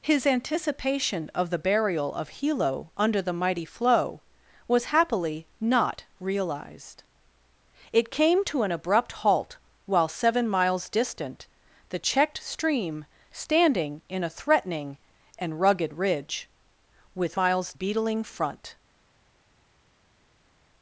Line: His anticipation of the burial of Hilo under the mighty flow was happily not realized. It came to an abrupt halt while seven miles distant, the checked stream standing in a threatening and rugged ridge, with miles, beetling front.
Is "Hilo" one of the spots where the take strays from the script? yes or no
no